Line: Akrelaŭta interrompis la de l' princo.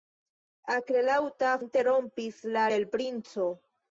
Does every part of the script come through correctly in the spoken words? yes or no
yes